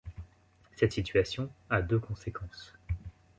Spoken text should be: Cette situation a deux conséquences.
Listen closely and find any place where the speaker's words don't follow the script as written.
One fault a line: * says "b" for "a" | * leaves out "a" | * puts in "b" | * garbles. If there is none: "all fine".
all fine